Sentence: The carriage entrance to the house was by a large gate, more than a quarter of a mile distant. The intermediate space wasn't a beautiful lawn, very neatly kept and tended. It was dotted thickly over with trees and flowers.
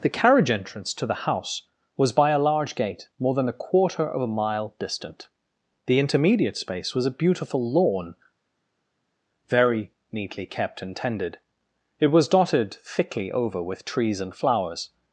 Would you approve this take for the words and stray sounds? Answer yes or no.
no